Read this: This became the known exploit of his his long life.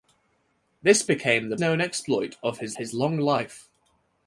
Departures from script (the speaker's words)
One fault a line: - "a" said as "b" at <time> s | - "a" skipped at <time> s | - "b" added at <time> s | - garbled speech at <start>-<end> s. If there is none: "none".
none